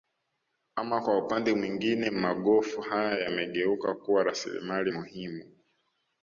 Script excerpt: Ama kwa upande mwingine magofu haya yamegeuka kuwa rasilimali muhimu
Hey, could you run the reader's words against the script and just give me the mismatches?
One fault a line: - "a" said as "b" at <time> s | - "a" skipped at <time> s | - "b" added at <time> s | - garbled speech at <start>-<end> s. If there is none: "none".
none